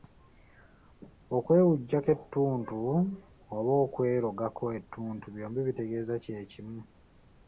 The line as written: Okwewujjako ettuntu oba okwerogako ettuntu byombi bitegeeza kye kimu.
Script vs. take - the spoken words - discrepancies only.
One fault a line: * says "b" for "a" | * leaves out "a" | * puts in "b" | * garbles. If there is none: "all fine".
all fine